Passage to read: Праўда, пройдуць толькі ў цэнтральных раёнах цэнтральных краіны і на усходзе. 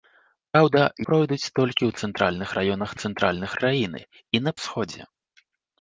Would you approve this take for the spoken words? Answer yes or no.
yes